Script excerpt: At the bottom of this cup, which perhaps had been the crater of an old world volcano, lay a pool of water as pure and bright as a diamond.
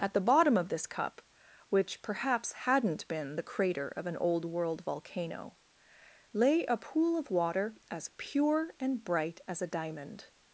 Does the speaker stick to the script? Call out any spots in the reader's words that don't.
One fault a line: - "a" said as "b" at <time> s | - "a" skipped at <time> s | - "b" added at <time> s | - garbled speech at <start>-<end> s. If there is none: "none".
- "had" said as "hadn't" at 2.5 s